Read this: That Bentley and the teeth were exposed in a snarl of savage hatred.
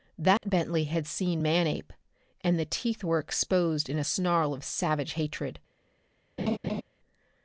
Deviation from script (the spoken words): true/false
true